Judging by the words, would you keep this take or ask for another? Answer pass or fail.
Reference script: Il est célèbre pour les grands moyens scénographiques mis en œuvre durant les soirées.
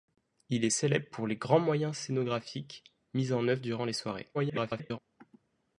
fail